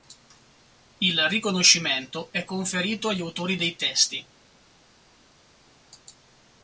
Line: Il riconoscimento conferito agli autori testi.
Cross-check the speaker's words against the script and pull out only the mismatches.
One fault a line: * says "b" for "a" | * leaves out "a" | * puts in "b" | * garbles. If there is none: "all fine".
* puts in "è"
* puts in "dei"